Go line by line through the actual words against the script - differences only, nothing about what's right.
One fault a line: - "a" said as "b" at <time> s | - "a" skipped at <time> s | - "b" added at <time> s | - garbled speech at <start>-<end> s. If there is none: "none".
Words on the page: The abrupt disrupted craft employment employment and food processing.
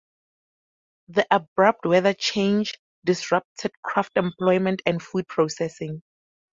- "weather change" added at 1.9 s
- "employment" skipped at 4.8 s